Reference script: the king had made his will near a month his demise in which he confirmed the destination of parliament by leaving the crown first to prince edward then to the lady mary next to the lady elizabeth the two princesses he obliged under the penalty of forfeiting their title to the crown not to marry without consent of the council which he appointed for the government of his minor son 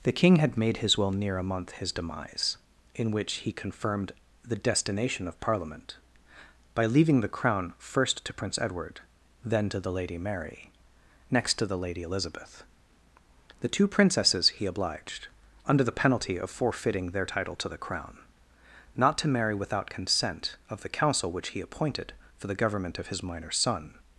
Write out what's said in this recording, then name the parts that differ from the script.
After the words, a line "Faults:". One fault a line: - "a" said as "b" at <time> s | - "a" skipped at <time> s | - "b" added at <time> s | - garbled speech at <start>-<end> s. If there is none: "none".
the king had made his will near a month his demise in which he confirmed the destination of parliament by leaving the crown first to prince edward then to the lady mary next to the lady elizabeth the two princesses he obliged under the penalty of forfeiting their title to the crown not to marry without consent of the council which he appointed for the government of his minor son
Faults:
none